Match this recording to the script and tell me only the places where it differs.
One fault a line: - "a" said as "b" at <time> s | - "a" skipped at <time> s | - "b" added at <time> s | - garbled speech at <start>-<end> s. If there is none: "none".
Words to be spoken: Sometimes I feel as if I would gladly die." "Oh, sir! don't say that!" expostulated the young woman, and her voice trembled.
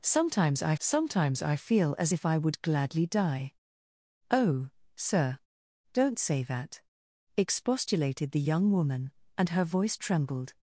- "sometimes I" added at 0.8 s